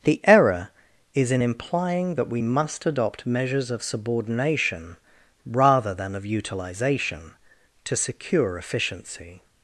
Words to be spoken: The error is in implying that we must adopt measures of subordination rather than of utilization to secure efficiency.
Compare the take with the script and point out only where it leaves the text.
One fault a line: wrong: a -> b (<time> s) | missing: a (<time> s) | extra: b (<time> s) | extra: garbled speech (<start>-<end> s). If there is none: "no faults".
no faults